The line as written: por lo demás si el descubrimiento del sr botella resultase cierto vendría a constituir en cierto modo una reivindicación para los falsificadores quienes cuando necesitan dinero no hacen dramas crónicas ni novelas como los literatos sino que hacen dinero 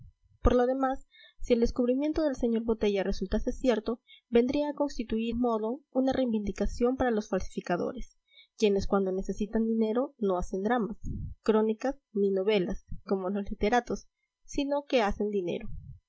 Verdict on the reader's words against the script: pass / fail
fail